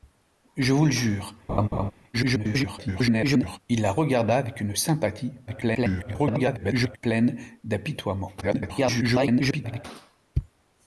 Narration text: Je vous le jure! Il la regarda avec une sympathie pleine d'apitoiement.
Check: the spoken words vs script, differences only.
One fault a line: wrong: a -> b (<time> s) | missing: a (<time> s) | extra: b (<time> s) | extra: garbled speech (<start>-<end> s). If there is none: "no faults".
extra: garbled speech (2.1-3.6 s)
extra: garbled speech (5.5-7.0 s)
extra: garbled speech (8.4-9.9 s)